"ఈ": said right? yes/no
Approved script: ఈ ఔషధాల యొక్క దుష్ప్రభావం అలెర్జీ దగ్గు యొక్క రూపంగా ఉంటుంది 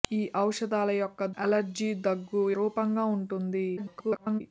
yes